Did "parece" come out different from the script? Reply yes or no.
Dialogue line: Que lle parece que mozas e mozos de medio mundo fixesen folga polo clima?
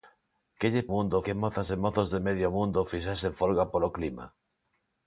yes